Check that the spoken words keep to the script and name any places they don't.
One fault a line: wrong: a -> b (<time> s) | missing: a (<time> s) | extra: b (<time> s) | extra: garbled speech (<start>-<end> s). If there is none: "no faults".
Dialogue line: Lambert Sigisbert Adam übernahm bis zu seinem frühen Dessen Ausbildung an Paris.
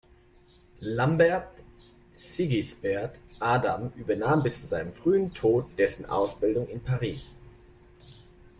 extra: Tod (5.3 s)
wrong: an -> in (6.7 s)